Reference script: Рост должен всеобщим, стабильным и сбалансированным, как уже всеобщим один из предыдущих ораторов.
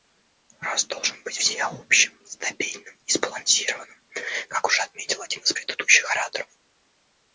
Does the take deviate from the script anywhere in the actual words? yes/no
yes